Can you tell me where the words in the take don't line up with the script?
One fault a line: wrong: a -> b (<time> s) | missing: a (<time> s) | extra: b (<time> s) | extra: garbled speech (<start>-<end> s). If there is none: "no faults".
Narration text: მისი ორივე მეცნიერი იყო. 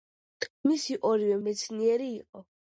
no faults